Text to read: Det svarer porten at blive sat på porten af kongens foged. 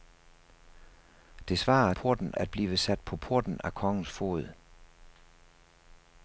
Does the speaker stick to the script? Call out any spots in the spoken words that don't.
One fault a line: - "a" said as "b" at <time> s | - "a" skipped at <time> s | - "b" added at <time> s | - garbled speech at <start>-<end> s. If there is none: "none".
none